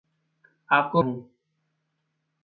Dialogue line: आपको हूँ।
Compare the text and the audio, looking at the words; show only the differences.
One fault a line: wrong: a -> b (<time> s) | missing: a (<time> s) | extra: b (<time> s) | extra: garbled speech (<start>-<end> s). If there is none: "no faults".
no faults